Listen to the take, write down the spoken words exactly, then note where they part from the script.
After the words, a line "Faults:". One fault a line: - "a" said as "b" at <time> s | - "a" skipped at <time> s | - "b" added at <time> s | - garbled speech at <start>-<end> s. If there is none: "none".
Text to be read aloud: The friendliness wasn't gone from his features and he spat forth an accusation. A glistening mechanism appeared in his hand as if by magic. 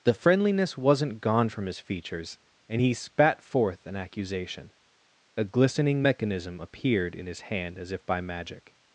The friendliness wasn't gone from his features and he spat forth an accusation. A glistening mechanism appeared in his hand as if by magic.
Faults:
none